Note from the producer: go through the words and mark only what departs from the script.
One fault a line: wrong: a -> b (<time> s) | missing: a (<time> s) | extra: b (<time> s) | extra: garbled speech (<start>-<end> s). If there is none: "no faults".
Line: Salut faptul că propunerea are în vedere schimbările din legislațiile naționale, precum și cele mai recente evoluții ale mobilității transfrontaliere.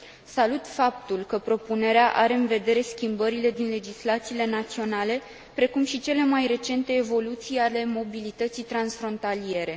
no faults